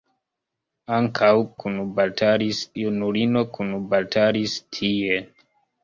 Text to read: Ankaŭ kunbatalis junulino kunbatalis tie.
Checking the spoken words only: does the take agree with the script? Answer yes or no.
yes